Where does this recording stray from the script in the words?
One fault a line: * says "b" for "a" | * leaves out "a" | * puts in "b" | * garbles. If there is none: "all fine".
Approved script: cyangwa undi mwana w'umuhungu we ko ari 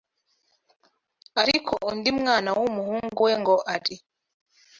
* says "ariko" for "cyangwa"
* says "ngo" for "ko"